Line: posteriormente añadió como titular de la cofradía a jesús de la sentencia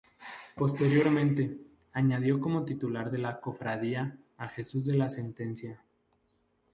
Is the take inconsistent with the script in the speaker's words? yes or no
no